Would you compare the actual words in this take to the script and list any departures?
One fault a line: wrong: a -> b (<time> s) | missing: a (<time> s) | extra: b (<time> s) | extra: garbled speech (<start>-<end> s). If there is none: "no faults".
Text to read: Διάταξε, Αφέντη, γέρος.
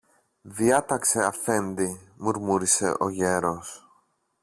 extra: μουρμούρισε ο (2.2 s)